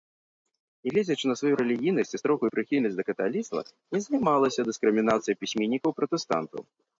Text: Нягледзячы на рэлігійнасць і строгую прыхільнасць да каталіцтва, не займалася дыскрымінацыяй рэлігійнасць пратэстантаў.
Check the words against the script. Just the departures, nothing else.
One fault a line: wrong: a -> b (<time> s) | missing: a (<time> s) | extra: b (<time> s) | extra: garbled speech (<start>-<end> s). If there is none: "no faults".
extra: сваю (1.4 s)
wrong: рэлігійнасць -> пісьменнікаў (5.4 s)